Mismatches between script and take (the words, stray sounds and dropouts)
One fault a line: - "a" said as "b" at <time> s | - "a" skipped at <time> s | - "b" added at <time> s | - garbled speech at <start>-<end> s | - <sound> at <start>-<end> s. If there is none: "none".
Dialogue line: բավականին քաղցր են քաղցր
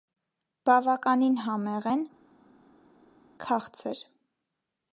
- "քաղցր" said as "համեղ" at 1.4 s